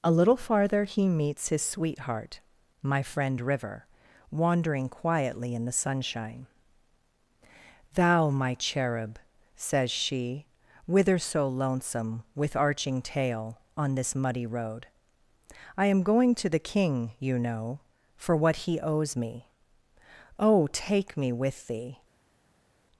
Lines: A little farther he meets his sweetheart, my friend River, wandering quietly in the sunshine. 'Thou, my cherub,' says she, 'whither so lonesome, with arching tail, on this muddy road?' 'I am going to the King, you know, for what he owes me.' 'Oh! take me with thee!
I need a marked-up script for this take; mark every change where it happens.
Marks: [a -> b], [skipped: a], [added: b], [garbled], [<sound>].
A little farther he meets his sweetheart, my friend River, wandering quietly in the sunshine. 'Thou, my cherub,' says she, 'whither so lonesome, with arching tail, on this muddy road?' 'I am going to the King, you know, for what he owes me.' 'Oh! take me with thee!